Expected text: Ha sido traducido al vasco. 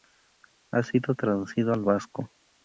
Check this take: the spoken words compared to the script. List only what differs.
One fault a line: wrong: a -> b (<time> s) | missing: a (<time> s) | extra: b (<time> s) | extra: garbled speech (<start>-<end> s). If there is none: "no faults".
no faults